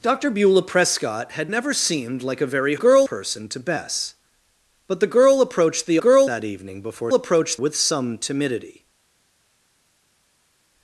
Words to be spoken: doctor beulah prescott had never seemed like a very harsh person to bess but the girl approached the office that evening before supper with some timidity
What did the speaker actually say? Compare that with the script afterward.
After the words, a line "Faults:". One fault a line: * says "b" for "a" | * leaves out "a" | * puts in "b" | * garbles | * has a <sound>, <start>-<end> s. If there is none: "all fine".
doctor beulah prescott had never seemed like a very girl person to bess but the girl approached the girl that evening before approached with some timidity
Faults:
* says "girl" for "harsh"
* says "girl" for "office"
* says "approached" for "supper"